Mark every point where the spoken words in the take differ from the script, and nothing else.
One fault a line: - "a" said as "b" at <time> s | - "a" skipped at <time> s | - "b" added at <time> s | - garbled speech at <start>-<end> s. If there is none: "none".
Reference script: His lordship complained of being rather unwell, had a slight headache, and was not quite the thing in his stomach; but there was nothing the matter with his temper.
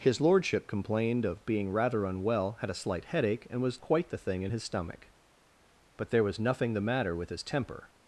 - "not" skipped at 3.8 s